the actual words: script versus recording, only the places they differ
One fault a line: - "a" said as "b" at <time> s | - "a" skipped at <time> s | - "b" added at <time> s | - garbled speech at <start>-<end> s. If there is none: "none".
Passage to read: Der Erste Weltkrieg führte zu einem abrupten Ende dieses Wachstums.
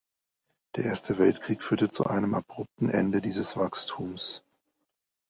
none